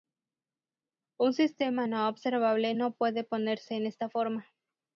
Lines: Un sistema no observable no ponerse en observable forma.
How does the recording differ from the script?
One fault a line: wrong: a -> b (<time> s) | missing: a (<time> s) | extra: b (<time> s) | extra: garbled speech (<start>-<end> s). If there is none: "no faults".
extra: puede (2.9 s)
wrong: observable -> esta (3.9 s)